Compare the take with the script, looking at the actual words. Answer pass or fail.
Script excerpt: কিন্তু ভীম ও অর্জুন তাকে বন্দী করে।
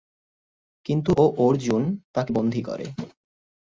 fail